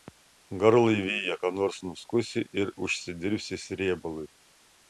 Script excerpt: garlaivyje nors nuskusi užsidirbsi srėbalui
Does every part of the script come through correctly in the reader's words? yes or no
no